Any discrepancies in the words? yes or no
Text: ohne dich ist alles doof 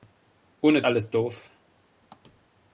yes